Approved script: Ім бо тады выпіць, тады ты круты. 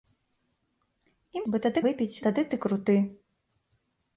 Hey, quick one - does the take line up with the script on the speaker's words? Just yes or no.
yes